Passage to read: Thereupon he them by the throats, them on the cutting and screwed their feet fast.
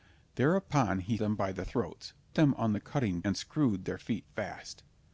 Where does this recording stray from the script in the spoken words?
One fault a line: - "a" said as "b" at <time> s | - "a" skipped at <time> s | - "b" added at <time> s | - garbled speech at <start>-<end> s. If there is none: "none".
none